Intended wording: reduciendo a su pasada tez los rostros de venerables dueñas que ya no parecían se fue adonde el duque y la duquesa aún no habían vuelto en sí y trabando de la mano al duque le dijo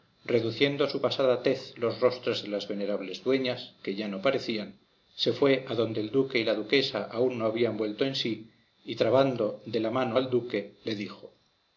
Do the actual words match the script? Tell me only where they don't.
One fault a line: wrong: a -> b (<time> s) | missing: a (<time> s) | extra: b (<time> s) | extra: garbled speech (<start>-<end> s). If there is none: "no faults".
extra: las (2.5 s)